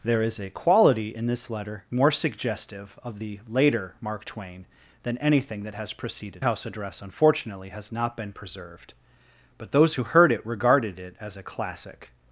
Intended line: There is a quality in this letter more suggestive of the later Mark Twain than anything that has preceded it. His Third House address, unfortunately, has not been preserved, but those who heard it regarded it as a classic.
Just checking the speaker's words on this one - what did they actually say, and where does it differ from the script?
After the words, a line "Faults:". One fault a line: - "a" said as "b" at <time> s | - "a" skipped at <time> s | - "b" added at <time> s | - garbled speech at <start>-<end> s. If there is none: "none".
There is a quality in this letter more suggestive of the later Mark Twain than anything that has preceded House address, unfortunately, has not been preserved, but those who heard it regarded it as a classic.
Faults:
- "it His Third" skipped at 6.5 s